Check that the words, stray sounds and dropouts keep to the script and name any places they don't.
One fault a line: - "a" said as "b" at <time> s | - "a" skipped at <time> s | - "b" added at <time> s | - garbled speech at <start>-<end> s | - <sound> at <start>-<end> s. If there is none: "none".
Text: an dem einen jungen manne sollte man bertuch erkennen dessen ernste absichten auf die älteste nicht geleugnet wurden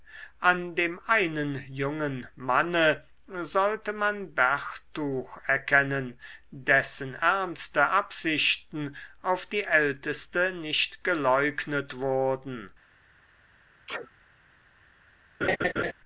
- sneeze at 13.9-14.1 s
- laugh at 15.4-15.9 s